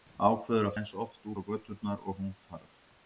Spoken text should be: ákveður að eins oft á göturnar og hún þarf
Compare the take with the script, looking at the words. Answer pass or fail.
pass